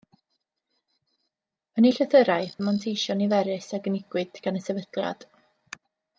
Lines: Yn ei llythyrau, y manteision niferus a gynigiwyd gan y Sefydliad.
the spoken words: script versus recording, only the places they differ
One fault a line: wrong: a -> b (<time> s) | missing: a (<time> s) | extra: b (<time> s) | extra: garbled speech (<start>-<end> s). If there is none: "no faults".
no faults